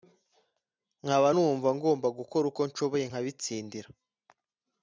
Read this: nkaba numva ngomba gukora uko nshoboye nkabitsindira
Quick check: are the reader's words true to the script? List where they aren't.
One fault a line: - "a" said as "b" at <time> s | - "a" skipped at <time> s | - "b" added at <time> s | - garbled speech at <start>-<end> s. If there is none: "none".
none